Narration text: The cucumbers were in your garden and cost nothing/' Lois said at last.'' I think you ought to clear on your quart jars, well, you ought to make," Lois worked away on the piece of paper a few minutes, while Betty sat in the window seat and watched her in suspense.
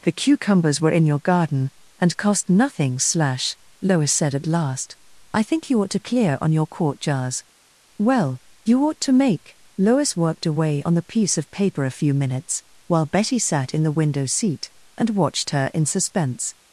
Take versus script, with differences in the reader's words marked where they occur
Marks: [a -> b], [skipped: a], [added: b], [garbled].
The cucumbers were in your garden and cost nothing/' [added: slash] Lois said at last.'' I think you ought to clear on your quart jars, well, you ought to make," Lois worked away on the piece of paper a few minutes, while Betty sat in the window seat and watched her in suspense.